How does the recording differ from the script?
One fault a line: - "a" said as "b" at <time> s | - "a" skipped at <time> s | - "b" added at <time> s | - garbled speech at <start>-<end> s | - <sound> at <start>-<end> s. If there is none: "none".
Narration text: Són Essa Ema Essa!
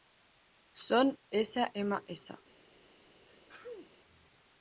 - sneeze at 3.3-3.9 s